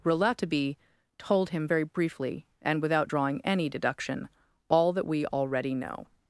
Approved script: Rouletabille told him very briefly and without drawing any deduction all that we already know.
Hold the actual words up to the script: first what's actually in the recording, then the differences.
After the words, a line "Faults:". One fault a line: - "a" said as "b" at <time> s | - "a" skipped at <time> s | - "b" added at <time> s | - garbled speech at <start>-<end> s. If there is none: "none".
Rouletabille told him very briefly and without drawing any deduction all that we already know.
Faults:
none